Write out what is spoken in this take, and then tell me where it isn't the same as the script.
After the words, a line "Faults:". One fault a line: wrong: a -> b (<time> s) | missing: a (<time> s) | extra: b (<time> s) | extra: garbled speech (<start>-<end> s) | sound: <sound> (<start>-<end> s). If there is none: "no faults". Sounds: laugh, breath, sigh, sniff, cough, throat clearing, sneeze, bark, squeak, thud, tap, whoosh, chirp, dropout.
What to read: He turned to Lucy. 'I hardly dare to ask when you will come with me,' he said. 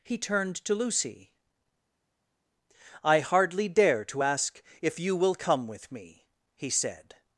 He turned to Lucy. 'I hardly dare to ask if you will come with me,' he said.
Faults:
wrong: when -> if (4.8 s)